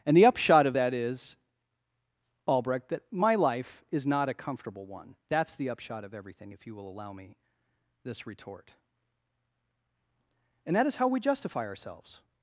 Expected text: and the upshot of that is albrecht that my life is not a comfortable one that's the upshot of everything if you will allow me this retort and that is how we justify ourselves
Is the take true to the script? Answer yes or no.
yes